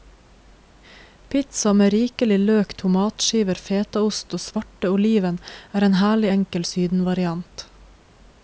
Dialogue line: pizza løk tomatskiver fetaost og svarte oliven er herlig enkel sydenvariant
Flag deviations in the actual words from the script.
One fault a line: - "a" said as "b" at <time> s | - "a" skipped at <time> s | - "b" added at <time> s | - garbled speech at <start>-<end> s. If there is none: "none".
- "med rikelig" added at 1.7 s
- "en" added at 5.9 s